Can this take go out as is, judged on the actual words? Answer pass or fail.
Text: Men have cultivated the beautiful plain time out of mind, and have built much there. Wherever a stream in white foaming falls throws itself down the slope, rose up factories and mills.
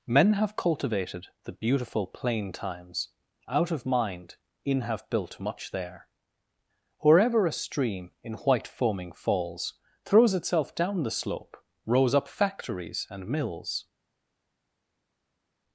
fail